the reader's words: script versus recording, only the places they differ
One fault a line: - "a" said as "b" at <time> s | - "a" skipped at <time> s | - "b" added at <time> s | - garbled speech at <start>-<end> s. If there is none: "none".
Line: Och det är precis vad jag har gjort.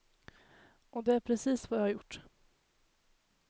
none